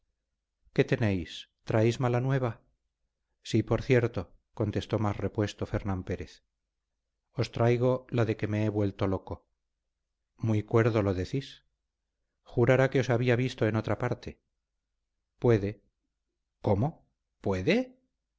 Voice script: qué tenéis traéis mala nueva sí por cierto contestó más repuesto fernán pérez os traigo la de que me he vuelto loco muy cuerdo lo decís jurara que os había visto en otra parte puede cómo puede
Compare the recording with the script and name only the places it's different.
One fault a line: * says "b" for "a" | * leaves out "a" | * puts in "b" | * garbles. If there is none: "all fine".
all fine